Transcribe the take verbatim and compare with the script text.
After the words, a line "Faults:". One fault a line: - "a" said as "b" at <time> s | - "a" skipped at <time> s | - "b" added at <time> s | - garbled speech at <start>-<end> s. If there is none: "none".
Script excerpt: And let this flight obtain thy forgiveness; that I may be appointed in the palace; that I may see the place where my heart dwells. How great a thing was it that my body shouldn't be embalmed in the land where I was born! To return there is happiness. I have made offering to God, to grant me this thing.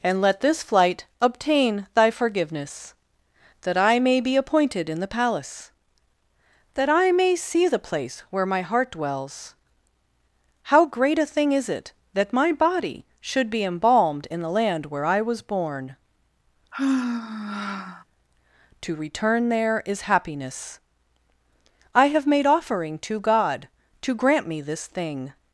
And let this flight obtain thy forgiveness; that I may be appointed in the palace; that I may see the place where my heart dwells. How great a thing is it that my body should be embalmed in the land where I was born! To return there is happiness. I have made offering to God, to grant me this thing.
Faults:
- "was" said as "is" at 11.5 s
- "shouldn't" said as "should" at 13.2 s